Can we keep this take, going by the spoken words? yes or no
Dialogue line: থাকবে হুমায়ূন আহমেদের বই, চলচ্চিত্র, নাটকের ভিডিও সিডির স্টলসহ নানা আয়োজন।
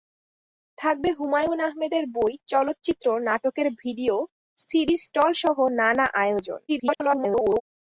no